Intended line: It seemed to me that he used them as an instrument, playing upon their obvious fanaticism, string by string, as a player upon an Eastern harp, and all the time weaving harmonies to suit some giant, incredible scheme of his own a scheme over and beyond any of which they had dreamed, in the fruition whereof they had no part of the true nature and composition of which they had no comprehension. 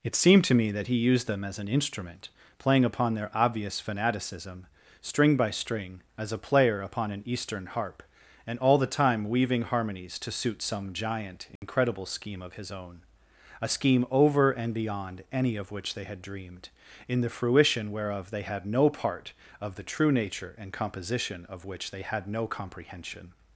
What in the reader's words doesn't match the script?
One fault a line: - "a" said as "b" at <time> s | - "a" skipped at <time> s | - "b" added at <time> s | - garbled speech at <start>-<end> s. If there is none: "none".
none